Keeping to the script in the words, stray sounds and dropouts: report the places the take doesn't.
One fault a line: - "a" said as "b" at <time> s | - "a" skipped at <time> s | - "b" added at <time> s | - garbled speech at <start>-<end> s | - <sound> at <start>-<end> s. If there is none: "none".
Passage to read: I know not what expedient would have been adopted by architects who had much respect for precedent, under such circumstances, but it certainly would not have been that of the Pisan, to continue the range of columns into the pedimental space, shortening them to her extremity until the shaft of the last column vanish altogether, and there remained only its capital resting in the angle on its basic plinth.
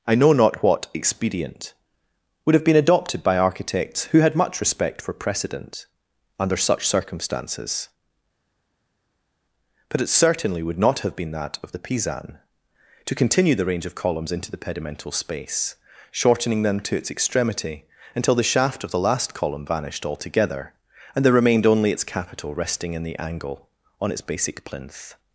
- "her" said as "its" at 17.0 s
- "vanish" said as "vanished" at 19.7 s